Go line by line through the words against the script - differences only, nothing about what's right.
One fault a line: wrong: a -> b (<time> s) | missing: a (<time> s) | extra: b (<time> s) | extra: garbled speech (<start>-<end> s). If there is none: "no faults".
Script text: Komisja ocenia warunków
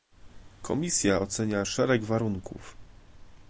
extra: szereg (1.6 s)